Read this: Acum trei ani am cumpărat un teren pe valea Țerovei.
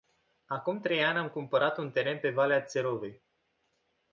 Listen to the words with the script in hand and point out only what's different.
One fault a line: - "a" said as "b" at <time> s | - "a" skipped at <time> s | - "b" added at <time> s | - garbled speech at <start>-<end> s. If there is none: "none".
none